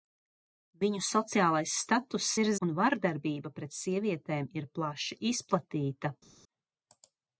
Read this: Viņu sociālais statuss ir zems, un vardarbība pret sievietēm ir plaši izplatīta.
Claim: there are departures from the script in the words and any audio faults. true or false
true